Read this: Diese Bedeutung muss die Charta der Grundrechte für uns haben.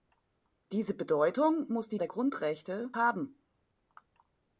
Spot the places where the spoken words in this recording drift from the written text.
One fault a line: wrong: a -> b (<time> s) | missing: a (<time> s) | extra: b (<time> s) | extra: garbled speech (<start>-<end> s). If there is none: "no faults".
missing: Charta (2.0 s)
missing: für uns (2.9 s)